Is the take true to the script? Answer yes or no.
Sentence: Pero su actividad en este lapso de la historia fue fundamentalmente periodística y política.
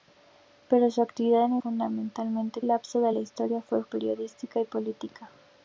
no